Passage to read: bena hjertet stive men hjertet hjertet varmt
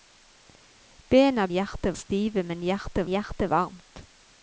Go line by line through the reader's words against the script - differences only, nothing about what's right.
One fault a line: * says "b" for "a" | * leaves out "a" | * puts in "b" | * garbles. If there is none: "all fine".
all fine